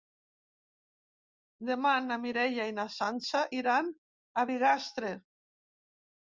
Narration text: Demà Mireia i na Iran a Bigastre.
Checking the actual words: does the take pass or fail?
fail